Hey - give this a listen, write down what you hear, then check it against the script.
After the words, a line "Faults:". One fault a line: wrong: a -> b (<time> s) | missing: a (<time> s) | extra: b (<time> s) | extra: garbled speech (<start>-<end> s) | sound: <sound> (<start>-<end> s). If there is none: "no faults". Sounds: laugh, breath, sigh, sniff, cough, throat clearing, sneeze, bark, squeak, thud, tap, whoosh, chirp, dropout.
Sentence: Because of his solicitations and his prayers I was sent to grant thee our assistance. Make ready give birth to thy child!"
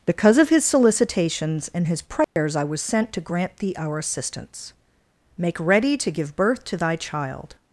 Because of his solicitations and his prayers I was sent to grant thee our assistance. Make ready to give birth to thy child!"
Faults:
sound: dropout (2.2-2.4 s)
extra: to (6.0 s)